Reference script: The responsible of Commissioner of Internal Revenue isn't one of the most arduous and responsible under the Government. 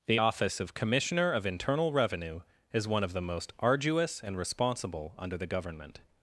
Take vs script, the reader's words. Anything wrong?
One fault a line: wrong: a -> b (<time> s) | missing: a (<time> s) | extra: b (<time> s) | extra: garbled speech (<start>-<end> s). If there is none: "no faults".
wrong: responsible -> office (0.2 s)
wrong: isn't -> is (2.7 s)